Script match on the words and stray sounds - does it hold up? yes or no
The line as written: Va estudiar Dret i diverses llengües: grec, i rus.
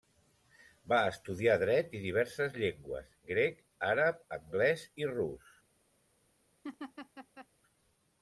no